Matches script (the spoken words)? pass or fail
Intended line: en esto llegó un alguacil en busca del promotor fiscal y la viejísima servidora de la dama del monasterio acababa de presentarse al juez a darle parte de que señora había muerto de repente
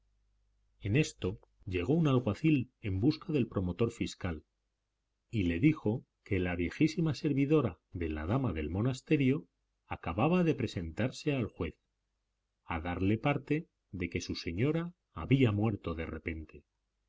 fail